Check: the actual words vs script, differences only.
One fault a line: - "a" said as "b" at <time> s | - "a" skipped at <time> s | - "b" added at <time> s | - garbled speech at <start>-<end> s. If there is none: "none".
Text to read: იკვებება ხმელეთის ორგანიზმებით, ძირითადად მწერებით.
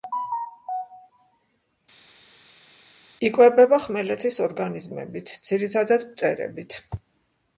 none